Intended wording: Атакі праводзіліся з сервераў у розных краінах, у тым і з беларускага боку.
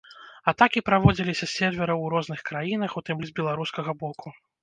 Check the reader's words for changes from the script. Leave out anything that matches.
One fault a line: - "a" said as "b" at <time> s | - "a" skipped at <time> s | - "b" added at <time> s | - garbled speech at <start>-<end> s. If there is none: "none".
none